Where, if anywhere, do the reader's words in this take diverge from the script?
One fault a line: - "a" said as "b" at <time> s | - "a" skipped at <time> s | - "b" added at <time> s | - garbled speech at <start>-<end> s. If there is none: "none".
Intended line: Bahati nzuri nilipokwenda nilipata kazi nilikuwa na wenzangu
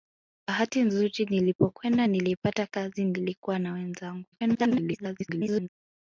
- garbled speech at 4.3-5.7 s